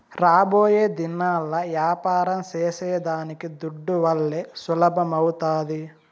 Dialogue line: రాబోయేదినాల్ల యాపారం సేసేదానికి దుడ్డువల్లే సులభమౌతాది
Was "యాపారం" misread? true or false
false